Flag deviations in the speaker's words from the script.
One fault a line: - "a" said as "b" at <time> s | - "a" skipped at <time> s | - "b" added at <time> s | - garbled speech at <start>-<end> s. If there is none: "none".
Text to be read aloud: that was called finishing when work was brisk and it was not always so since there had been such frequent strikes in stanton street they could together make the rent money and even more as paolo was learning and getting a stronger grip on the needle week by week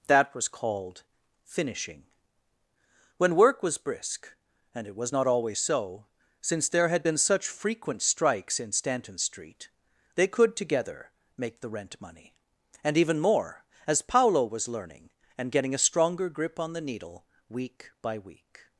none